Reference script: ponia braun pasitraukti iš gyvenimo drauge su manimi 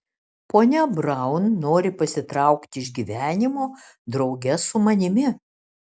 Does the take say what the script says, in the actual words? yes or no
no